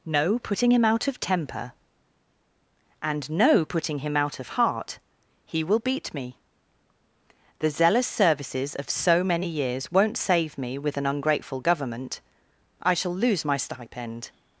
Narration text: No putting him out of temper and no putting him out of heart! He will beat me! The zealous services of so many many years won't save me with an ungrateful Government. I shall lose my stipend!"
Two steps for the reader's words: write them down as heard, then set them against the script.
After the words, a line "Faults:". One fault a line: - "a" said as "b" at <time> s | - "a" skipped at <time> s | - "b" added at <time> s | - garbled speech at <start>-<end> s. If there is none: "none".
No putting him out of temper and no putting him out of heart! He will beat me! The zealous services of so many years won't save me with an ungrateful Government. I shall lose my stipend!"
Faults:
- "many" skipped at 9.5 s